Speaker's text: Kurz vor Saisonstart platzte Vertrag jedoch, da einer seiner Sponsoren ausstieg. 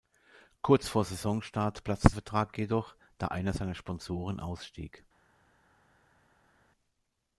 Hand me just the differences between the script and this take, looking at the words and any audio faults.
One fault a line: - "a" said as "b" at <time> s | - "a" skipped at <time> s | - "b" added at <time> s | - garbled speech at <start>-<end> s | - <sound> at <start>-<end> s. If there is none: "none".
none